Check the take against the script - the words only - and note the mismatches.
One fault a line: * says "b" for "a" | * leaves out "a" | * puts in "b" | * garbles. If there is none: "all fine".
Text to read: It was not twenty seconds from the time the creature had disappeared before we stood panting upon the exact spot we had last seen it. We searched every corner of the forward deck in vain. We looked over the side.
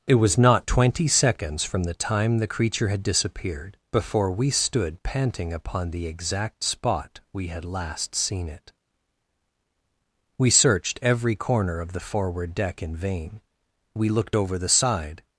all fine